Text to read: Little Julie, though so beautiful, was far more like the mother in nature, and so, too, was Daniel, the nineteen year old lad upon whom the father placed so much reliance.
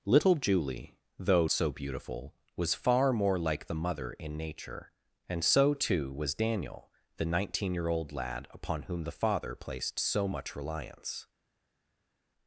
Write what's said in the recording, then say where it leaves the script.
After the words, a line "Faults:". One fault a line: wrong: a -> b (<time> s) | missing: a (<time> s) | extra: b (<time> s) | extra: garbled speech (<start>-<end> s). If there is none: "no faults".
Little Julie, though so beautiful, was far more like the mother in nature, and so, too, was Daniel, the nineteen year old lad upon whom the father placed so much reliance.
Faults:
no faults